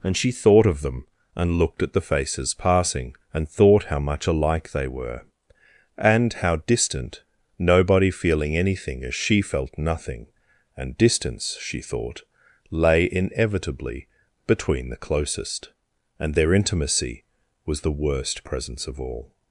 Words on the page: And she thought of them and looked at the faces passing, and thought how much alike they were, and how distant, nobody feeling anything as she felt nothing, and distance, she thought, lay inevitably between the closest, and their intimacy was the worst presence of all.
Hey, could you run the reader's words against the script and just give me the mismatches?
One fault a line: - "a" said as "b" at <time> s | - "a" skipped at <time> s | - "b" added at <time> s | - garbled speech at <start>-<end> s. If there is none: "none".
none